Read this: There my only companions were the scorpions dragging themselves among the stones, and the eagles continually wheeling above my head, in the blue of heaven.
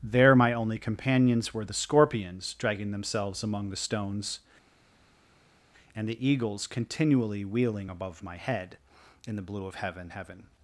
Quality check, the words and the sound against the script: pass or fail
fail